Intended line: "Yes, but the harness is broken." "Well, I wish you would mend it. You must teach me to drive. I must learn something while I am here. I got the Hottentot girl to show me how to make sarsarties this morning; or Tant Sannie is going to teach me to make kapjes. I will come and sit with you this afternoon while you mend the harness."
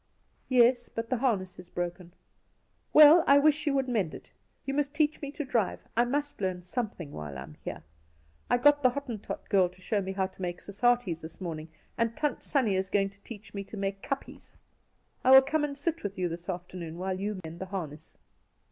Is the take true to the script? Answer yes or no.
no